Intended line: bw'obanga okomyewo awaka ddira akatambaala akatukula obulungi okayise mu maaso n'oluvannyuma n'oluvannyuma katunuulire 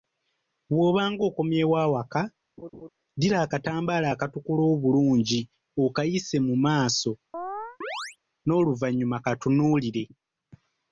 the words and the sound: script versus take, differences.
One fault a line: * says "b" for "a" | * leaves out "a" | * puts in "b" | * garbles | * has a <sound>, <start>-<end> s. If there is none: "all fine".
* has a laugh, 2.6-2.9 s
* has a chirp, 7.3-8.2 s
* leaves out "n'oluvannyuma"